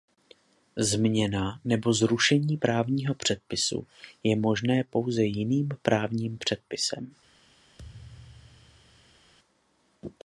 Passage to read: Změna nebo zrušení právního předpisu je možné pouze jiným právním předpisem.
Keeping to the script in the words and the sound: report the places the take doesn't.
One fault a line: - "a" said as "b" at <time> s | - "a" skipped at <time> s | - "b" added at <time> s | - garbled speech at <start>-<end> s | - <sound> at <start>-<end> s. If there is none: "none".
- thud at 7.8-9.3 s